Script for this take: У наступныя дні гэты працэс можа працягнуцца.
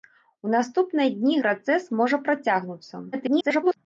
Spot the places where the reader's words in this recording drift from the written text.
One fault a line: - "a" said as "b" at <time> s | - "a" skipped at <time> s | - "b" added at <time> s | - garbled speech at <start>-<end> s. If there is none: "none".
- "гэты" skipped at 1.4 s
- garbled speech at 3.1-3.8 s